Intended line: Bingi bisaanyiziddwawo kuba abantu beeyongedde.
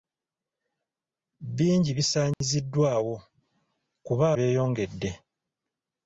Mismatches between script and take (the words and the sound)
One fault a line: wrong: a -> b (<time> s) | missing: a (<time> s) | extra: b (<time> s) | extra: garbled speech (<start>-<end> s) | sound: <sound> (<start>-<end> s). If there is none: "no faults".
sound: dropout (2.3-2.4 s)
missing: abantu (4.2 s)